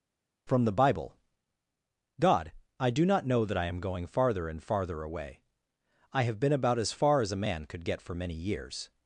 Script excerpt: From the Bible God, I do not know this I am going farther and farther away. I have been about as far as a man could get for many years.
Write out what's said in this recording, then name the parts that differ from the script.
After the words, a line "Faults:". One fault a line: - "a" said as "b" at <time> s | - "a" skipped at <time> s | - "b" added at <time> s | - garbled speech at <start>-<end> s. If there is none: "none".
From the Bible God, I do not know that I am going farther and farther away. I have been about as far as a man could get for many years.
Faults:
- "this" said as "that" at 3.4 s